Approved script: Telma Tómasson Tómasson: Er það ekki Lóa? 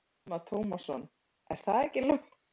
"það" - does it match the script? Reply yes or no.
yes